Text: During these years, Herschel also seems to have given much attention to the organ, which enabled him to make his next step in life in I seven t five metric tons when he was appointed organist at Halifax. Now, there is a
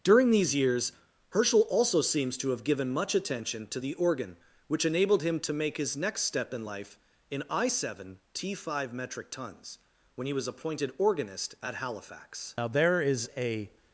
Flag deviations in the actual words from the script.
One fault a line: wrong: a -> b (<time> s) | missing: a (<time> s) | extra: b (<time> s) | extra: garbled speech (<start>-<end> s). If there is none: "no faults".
no faults